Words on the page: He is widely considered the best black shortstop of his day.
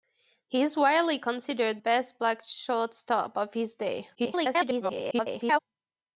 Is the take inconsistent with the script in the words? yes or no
yes